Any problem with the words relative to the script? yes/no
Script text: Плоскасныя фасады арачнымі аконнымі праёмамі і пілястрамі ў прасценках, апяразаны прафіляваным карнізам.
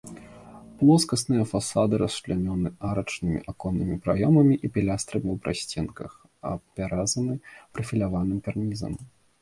yes